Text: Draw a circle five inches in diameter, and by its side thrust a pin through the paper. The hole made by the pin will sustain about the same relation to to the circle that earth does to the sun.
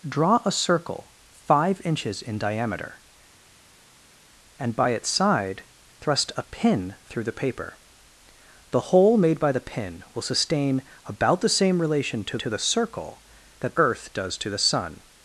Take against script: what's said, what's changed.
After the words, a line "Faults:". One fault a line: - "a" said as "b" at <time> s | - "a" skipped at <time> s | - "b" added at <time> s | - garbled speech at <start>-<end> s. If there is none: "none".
Draw a circle five inches in diameter, and by its side thrust a pin through the paper. The hole made by the pin will sustain about the same relation to to the circle that earth does to the sun.
Faults:
none